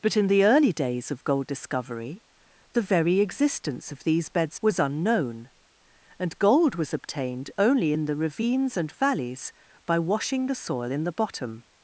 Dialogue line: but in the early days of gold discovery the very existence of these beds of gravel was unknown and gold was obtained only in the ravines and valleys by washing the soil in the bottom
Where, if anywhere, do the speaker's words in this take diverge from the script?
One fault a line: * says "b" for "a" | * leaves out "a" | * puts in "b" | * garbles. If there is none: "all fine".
* leaves out "of gravel"